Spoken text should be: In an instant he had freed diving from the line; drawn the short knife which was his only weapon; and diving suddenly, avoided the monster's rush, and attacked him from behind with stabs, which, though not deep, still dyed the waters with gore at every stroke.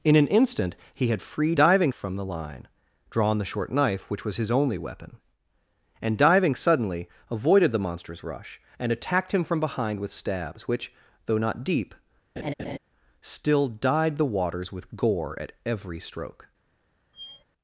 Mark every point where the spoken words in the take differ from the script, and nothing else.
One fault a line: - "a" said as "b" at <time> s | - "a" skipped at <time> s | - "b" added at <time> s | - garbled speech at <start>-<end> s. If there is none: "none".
none